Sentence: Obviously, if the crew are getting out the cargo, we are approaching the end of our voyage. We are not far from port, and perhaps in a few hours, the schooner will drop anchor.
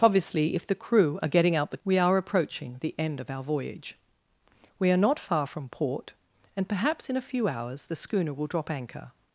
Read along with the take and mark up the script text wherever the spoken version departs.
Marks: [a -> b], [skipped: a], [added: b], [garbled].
Obviously, if the crew are getting out the [skipped: cargo,] we are approaching the end of our voyage. We are not far from port, and perhaps in a few hours, the schooner will drop anchor.